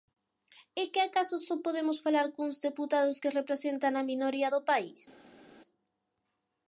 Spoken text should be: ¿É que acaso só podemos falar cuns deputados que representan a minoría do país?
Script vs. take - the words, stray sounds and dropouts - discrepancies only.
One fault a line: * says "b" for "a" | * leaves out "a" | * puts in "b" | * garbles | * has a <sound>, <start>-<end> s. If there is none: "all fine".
all fine